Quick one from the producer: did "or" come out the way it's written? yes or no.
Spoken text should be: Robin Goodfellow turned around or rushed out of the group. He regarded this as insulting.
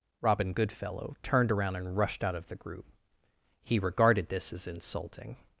no